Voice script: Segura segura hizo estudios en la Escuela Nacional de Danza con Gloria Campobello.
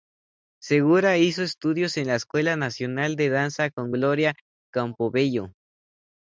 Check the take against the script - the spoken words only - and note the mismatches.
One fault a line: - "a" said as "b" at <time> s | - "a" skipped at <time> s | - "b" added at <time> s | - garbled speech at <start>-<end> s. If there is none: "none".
- "segura" skipped at 1.2 s